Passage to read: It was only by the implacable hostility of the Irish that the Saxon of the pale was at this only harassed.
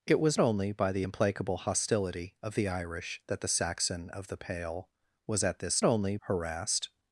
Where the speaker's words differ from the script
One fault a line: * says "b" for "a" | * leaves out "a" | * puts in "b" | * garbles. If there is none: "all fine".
all fine